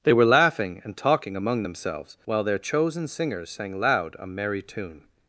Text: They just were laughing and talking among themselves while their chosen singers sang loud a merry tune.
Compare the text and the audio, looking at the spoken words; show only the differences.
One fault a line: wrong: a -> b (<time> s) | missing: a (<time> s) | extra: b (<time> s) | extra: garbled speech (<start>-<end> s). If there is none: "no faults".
missing: just (0.1 s)